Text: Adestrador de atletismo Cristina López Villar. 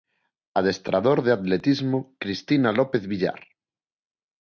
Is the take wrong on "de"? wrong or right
right